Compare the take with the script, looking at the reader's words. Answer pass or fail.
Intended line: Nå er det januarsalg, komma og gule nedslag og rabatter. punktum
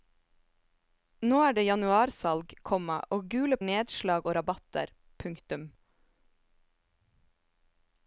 pass